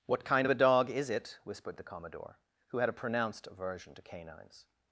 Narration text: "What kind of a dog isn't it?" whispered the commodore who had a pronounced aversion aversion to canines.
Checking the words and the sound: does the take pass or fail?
fail